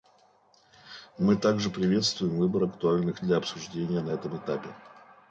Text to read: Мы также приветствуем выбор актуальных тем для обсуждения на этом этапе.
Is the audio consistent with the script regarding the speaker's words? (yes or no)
no